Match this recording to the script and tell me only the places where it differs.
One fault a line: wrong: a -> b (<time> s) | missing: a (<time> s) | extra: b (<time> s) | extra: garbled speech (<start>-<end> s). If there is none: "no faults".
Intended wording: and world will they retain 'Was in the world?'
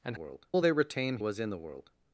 no faults